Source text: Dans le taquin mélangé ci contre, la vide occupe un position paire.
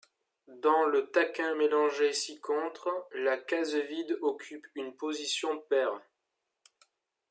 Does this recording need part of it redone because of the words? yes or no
yes